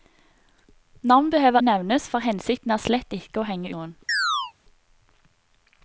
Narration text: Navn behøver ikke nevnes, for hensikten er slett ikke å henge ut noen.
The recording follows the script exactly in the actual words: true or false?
false